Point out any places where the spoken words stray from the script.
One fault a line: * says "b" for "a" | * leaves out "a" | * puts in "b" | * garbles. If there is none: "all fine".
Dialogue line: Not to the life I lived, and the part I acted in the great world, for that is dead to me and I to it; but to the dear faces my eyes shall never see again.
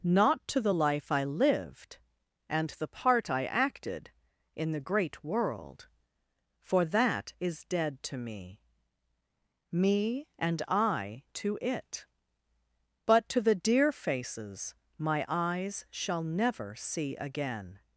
* puts in "me"